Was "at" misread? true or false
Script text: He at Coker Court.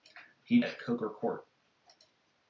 false